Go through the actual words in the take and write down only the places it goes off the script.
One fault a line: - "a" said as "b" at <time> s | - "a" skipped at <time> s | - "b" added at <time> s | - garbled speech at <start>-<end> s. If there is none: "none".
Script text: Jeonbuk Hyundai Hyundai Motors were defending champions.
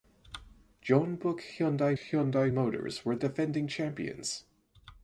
none